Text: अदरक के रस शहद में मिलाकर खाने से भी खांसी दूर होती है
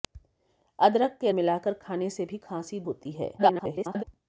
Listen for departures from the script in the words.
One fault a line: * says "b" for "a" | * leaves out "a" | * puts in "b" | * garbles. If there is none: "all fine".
* leaves out "रस शहद में"
* leaves out "दूर"
* garbles